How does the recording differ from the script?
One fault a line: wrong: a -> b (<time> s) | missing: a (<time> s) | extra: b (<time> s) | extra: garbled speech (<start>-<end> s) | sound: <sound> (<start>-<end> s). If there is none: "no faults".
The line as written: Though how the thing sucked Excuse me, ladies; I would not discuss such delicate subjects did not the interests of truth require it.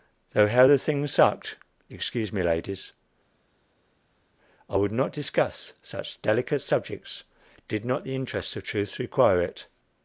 no faults